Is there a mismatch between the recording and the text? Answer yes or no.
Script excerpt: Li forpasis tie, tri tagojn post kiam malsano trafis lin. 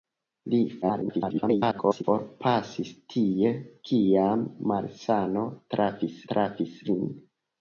yes